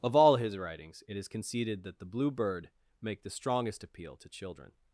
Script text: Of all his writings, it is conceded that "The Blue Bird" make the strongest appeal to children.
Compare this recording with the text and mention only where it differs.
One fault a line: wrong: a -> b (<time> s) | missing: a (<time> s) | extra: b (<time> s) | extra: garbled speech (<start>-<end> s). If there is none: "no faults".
no faults